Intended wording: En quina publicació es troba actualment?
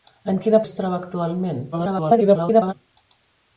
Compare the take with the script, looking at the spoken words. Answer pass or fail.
fail